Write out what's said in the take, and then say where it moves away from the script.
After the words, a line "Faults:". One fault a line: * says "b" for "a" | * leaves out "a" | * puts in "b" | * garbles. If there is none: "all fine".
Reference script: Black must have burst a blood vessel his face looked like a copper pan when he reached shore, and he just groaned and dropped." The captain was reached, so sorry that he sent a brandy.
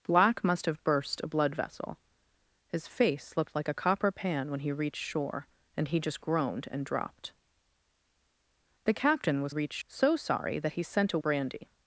Black must have burst a blood vessel his face looked like a copper pan when he reached shore, and he just groaned and dropped." The captain was reached, so sorry that he sent a brandy.
Faults:
all fine